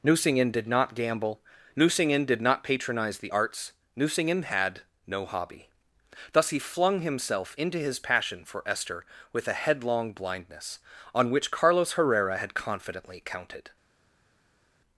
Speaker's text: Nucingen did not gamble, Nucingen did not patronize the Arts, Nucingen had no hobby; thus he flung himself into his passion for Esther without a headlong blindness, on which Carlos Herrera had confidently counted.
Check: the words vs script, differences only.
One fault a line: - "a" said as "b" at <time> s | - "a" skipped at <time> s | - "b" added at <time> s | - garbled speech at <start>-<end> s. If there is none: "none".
- "without" said as "with" at 9.3 s